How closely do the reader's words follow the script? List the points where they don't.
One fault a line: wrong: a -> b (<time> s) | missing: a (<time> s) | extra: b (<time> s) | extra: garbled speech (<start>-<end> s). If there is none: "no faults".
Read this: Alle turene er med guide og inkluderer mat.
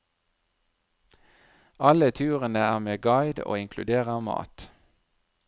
no faults